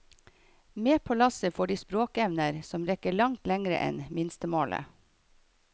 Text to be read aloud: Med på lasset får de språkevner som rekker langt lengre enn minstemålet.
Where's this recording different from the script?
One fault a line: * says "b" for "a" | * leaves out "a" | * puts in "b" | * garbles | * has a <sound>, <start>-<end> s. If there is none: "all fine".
all fine